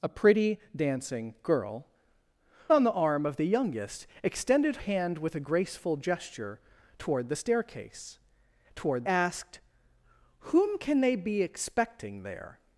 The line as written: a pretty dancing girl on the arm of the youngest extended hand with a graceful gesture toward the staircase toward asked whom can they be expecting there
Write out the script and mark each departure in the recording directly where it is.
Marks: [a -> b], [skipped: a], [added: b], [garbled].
a pretty dancing girl on the arm of the youngest extended hand with a graceful gesture toward the staircase toward asked whom can they be expecting there